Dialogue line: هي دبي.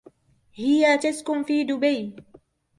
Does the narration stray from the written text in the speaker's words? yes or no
yes